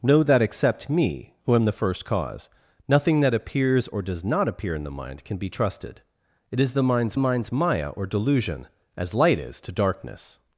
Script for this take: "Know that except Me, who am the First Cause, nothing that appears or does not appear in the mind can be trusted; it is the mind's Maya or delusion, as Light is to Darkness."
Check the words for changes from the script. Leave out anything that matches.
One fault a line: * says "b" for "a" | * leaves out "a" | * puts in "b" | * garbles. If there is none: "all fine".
* puts in "mind's"